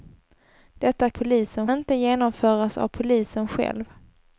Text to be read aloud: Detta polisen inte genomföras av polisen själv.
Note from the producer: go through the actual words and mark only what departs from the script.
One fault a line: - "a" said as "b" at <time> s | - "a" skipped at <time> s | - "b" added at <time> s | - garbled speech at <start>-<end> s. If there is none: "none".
none